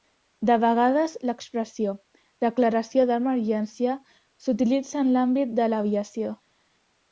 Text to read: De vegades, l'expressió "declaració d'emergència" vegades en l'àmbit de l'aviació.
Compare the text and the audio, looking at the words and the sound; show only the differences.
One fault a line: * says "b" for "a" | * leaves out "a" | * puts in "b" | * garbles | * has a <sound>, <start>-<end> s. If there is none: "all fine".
* says "s'utilitza" for "vegades"